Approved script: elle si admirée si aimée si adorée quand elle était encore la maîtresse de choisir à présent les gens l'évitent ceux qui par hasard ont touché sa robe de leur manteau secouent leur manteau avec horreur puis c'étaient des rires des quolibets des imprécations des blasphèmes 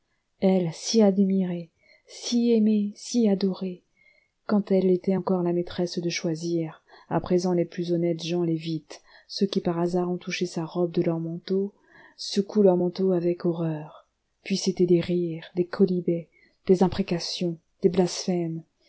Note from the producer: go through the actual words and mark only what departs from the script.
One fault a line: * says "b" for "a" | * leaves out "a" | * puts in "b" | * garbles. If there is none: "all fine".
* puts in "plus honnêtes"